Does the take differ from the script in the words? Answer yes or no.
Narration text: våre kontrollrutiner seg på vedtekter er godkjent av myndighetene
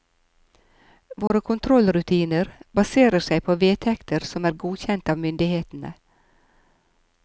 yes